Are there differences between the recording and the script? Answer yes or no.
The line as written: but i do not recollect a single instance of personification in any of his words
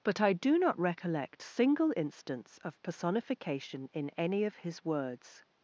yes